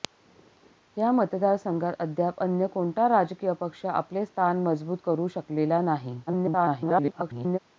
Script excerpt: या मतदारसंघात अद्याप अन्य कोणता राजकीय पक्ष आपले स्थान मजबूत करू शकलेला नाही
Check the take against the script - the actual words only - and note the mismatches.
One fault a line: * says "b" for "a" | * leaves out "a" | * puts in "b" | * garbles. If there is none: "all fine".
* garbles